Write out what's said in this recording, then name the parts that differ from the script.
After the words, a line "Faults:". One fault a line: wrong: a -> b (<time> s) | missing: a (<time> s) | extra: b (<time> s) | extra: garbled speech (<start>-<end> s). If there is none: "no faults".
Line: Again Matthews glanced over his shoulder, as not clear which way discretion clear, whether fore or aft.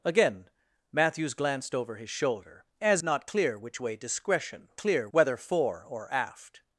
Again Matthews glanced over his shoulder, as not clear which way discretion clear, whether fore or aft.
Faults:
no faults